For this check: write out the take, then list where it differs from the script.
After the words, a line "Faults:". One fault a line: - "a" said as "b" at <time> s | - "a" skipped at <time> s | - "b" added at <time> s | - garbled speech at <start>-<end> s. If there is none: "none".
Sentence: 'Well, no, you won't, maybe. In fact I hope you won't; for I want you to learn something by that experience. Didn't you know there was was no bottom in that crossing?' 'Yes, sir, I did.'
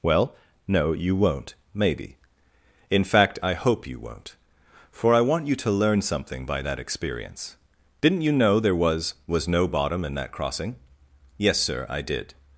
'Well, no, you won't, maybe. In fact I hope you won't; for I want you to learn something by that experience. Didn't you know there was was no bottom in that crossing?' 'Yes, sir, I did.'
Faults:
none